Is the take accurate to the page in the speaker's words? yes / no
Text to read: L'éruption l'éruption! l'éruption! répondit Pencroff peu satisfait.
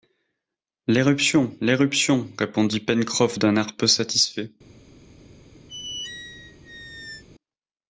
no